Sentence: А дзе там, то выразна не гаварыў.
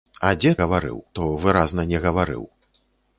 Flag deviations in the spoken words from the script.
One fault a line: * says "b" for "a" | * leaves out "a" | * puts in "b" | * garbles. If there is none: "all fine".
* says "гаварыў" for "там"